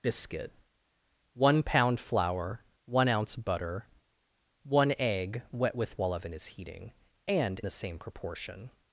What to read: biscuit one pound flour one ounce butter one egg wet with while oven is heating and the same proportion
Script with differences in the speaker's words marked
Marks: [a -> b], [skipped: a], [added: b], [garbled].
biscuit one pound flour one ounce butter one egg wet with while oven is heating and the same proportion